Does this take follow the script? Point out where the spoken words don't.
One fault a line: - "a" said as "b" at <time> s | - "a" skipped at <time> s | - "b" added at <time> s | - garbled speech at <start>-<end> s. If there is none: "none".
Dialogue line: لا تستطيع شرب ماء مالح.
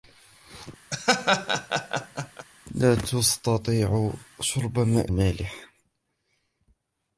none